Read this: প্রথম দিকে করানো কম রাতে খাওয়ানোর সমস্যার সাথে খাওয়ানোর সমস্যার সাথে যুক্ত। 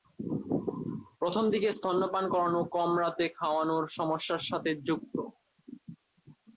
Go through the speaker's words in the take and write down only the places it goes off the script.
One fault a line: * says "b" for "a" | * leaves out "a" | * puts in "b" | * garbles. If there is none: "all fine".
* puts in "স্তন্যপান"
* leaves out "খাওয়ানোর সমস্যার সাথে"